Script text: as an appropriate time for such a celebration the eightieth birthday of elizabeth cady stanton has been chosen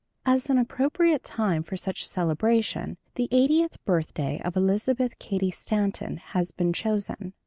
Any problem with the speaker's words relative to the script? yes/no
no